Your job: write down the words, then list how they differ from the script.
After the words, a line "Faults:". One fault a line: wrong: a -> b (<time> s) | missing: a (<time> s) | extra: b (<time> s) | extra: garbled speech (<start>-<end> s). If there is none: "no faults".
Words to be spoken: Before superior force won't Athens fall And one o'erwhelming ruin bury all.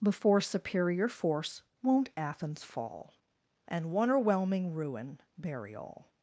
Before superior force won't Athens fall And one o'erwhelming ruin bury all.
Faults:
no faults